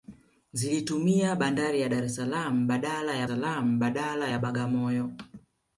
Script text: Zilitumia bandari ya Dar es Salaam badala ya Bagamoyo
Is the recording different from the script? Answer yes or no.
yes